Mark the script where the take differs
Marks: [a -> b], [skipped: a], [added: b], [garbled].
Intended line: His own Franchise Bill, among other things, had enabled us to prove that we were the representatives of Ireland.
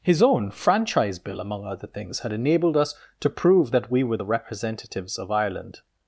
His own Franchise Bill, among other things, had enabled us to prove that we were the representatives of Ireland.